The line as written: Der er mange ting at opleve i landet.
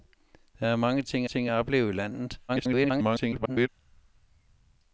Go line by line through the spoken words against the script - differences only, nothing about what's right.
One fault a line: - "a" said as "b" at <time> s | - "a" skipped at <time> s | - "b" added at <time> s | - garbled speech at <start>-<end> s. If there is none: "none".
- "ting" added at 1.2 s
- garbled speech at 2.5-3.7 s